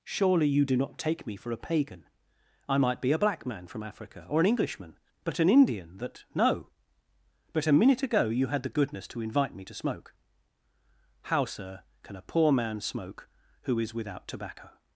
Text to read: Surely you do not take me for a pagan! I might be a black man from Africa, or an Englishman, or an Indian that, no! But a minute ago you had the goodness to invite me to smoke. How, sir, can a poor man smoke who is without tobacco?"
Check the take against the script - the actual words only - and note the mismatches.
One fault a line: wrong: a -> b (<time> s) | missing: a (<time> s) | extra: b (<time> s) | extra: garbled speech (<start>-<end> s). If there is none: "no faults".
wrong: or -> but (5.2 s)